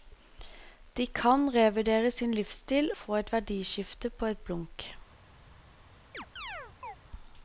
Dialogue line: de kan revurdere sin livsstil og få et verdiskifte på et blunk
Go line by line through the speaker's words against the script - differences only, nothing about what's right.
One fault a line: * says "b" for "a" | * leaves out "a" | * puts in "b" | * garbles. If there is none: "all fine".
* leaves out "og"